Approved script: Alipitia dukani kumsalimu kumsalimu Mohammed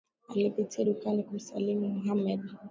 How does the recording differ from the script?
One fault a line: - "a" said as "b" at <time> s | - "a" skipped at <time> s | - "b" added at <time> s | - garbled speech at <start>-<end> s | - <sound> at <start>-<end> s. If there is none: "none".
- "kumsalimu" skipped at 1.9 s